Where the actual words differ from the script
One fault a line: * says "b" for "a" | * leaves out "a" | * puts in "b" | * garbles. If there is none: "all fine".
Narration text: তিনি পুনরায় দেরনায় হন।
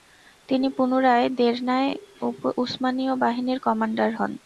* puts in "উসমানীয় বাহিনীর কমান্ডার"